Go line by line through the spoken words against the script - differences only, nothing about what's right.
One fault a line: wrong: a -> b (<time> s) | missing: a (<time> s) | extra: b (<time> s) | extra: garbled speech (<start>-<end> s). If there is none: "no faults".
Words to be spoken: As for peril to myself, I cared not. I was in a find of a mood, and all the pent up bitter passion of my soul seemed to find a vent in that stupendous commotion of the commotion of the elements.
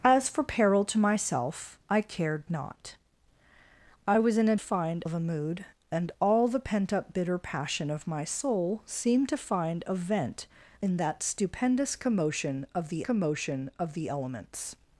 no faults